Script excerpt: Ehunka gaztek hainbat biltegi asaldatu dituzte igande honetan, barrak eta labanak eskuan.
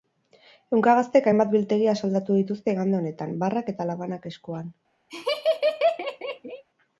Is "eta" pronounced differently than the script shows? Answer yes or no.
no